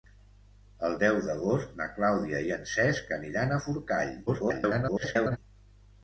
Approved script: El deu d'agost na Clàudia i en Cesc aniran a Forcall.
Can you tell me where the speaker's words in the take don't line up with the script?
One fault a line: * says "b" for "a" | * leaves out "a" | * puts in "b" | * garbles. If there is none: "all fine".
* garbles